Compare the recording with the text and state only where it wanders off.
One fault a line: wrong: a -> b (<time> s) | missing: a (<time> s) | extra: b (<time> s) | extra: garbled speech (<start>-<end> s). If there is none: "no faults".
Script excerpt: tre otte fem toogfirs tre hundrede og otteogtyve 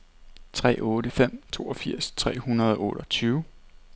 no faults